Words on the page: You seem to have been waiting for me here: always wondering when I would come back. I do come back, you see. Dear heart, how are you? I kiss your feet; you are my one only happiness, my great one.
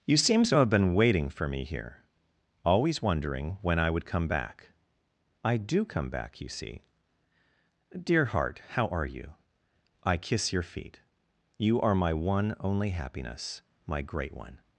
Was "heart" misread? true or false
false